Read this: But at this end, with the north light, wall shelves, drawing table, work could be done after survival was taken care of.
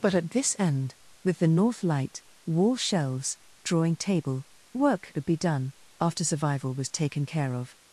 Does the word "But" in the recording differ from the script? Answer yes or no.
no